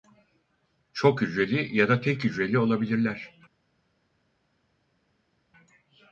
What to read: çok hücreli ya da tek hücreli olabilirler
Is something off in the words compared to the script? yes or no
no